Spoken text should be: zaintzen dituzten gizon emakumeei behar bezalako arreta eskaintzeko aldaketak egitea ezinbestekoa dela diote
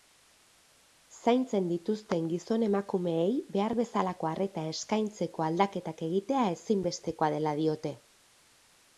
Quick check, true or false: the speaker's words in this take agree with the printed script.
true